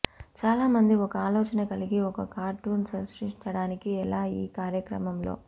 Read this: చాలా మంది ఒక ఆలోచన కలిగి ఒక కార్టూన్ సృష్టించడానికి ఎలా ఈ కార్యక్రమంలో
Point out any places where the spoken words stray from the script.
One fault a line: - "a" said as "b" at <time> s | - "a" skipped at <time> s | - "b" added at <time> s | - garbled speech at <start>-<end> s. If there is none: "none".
none